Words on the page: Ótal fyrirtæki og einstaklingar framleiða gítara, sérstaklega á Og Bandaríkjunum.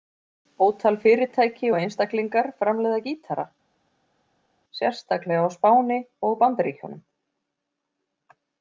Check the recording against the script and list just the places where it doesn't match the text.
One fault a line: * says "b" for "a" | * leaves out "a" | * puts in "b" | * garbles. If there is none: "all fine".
* puts in "Spáni"